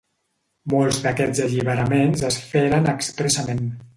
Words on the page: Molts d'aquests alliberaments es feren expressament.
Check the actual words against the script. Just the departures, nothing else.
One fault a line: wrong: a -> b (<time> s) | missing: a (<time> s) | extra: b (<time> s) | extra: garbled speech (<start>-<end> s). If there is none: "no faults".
no faults